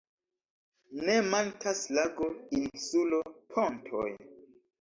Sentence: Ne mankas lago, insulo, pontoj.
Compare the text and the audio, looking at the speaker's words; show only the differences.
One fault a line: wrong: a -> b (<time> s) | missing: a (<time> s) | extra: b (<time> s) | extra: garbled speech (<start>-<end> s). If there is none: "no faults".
no faults